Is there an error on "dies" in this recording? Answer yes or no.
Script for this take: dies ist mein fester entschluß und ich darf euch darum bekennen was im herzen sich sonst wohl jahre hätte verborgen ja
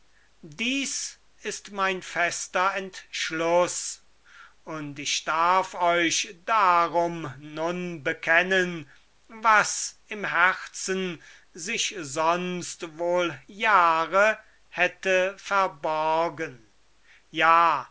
no